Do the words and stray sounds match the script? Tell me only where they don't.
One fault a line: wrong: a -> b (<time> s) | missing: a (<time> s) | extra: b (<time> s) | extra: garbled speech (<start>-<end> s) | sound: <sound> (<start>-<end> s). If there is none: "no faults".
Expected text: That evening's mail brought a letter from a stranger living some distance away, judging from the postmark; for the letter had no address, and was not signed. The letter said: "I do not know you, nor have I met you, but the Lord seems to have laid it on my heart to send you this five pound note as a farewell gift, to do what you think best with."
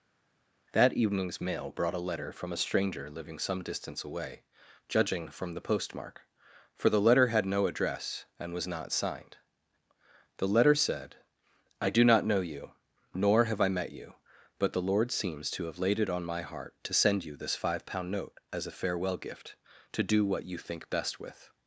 no faults